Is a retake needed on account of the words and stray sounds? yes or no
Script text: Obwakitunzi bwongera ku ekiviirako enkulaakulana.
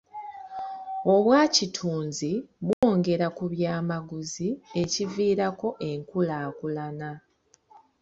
yes